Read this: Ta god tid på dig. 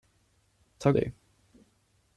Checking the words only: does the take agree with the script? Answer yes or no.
no